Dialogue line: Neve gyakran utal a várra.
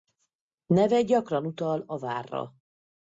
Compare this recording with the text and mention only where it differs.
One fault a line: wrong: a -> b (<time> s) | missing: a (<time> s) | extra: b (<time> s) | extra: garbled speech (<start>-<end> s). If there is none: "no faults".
no faults